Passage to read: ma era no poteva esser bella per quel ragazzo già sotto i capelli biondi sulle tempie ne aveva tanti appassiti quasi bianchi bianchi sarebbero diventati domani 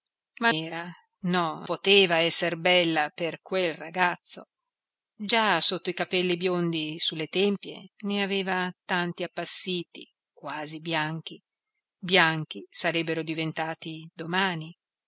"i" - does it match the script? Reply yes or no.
yes